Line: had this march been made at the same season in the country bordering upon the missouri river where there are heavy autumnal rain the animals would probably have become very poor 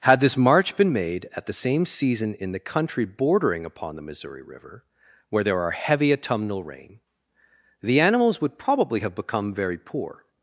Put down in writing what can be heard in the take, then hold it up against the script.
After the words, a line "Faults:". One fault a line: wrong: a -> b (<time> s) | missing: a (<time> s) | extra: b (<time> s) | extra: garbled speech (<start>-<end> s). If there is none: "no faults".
had this march been made at the same season in the country bordering upon the missouri river where there are heavy autumnal rain the animals would probably have become very poor
Faults:
no faults